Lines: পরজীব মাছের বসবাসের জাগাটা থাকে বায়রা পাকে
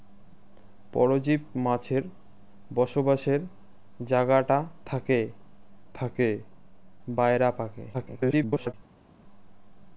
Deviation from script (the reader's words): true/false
true